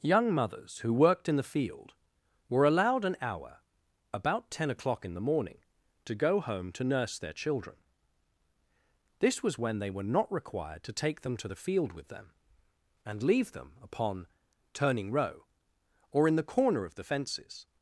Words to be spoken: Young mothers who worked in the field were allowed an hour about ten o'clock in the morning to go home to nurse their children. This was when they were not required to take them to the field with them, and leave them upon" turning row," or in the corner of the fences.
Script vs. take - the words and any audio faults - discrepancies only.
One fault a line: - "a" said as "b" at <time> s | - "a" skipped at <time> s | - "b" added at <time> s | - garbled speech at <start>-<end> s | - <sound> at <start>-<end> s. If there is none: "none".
none